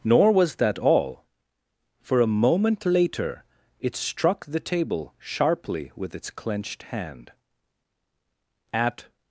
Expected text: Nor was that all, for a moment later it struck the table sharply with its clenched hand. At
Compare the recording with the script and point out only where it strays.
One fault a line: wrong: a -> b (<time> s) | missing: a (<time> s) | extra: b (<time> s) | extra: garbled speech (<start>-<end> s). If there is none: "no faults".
no faults